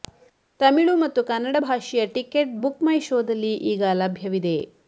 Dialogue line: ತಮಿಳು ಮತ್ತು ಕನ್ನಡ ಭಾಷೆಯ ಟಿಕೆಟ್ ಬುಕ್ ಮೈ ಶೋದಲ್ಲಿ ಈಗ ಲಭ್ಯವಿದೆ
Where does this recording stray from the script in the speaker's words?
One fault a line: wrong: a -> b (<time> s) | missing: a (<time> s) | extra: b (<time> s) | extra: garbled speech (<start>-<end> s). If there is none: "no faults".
no faults